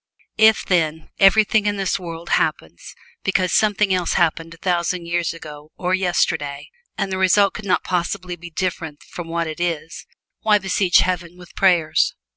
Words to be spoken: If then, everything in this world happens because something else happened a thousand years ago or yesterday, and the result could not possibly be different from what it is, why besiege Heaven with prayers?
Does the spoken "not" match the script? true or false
true